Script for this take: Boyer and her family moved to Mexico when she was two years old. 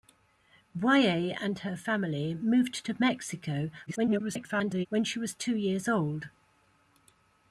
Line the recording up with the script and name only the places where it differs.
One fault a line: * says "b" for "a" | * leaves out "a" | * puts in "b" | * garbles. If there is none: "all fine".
* garbles